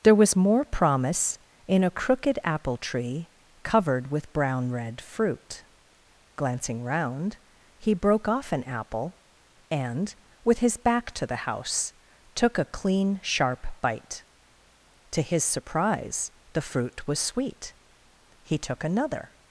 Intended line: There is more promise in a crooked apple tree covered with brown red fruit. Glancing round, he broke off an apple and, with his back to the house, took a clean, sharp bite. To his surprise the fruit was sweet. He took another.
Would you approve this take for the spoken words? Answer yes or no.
no